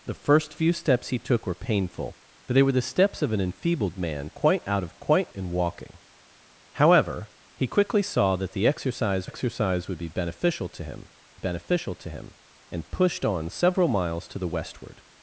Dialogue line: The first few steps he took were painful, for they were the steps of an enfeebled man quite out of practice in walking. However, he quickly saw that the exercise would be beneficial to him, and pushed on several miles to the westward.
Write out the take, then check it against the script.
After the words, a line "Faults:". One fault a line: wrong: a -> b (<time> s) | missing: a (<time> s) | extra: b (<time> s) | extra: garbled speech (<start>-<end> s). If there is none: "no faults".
The first few steps he took were painful, for they were the steps of an enfeebled man quite out of quite in walking. However, he quickly saw that the exercise exercise would be beneficial to him beneficial to him, and pushed on several miles to the westward.
Faults:
wrong: practice -> quite (5.0 s)
extra: exercise (9.2 s)
extra: beneficial to him (11.4 s)